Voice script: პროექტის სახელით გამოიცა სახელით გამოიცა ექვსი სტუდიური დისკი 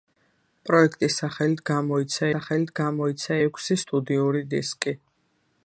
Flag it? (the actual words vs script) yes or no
no